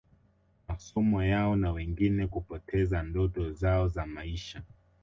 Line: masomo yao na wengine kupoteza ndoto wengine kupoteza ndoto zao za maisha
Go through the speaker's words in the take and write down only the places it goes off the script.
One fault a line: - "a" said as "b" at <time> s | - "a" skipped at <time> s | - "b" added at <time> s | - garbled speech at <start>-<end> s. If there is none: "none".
- "wengine kupoteza ndoto" skipped at 3.5 s